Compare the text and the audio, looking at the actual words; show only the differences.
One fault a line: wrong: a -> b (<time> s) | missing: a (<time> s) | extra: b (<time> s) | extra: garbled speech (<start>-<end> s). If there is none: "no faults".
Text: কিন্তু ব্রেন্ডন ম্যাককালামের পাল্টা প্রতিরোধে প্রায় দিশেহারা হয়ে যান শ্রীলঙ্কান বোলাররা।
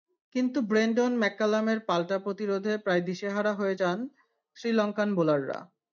no faults